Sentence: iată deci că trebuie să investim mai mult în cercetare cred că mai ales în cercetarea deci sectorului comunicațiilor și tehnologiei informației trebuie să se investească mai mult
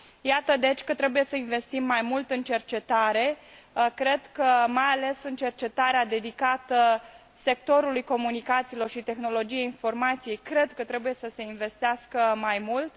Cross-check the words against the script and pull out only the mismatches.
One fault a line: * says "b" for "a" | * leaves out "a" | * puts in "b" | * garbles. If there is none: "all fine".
* says "dedicată" for "deci"